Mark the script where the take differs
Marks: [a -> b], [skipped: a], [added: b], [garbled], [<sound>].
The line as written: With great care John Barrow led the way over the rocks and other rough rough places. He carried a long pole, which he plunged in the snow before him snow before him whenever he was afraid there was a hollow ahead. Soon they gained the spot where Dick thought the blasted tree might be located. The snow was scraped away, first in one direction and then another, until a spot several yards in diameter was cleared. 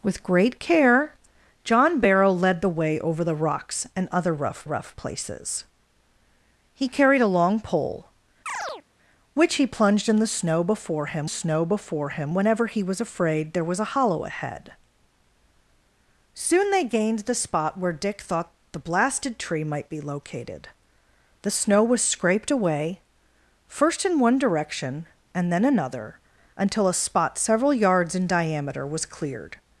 With great care John Barrow led the way over the rocks and other rough rough places. He carried a long pole, [chirp] which he plunged in the snow before him snow before him whenever he was afraid there was a hollow ahead. Soon they gained the spot where Dick thought the blasted tree might be located. The snow was scraped away, first in one direction and then another, until a spot several yards in diameter was cleared.